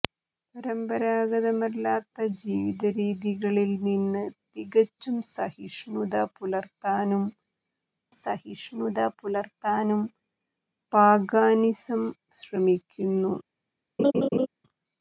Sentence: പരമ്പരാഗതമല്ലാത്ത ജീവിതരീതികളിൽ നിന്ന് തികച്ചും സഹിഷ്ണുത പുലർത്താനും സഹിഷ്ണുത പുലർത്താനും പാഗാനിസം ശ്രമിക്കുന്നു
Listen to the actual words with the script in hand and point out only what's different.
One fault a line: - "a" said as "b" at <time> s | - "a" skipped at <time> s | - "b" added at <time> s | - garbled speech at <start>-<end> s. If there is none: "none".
none